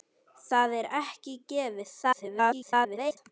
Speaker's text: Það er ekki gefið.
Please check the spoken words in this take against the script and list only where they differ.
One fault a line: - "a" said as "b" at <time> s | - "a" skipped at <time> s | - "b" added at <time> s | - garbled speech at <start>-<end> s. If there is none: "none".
- garbled speech at 2.0-3.2 s